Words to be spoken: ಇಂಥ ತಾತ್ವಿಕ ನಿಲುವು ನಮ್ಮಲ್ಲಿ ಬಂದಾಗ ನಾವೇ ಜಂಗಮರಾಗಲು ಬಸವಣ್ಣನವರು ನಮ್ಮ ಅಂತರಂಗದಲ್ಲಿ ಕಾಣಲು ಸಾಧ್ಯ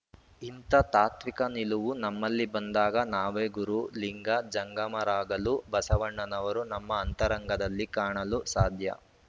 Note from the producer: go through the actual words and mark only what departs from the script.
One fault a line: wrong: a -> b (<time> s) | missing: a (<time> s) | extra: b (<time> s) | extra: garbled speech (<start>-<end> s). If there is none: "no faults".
extra: ಗುರು ಲಿಂಗ (3.6 s)